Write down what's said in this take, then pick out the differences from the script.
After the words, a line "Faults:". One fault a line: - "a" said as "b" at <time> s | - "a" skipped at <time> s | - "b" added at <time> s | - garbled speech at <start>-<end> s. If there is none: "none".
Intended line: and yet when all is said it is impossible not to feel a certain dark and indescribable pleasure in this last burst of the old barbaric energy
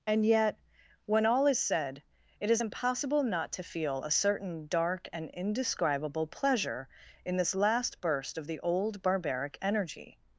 and yet when all is said it is impossible not to feel a certain dark and indescribable pleasure in this last burst of the old barbaric energy
Faults:
none